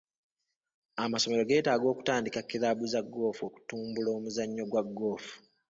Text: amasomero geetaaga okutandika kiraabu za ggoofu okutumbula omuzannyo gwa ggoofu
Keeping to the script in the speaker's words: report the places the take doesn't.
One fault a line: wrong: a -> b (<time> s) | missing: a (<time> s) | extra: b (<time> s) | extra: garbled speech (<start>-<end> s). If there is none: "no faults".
no faults